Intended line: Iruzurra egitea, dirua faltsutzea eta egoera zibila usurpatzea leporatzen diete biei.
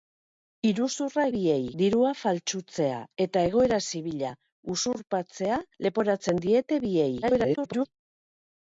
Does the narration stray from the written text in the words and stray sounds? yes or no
yes